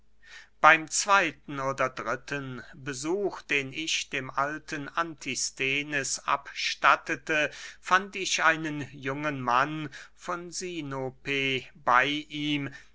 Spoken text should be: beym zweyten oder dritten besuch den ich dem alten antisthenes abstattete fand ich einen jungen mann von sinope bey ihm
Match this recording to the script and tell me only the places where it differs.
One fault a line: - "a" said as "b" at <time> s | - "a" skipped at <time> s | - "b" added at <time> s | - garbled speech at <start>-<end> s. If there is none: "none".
none